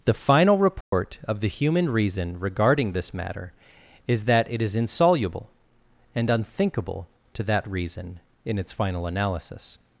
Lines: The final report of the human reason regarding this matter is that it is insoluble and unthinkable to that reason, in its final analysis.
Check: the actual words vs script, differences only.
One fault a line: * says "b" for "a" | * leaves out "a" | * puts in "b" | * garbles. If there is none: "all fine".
all fine